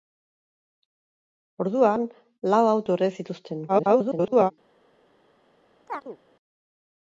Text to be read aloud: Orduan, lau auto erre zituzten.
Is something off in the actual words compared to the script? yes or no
yes